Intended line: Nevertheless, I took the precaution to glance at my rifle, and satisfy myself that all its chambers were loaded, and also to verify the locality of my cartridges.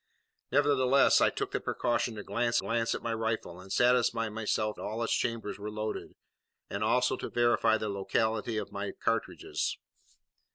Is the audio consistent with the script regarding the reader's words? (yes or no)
no